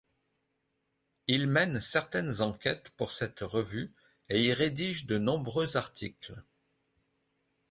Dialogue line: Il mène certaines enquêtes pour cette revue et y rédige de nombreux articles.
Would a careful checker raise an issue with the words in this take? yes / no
no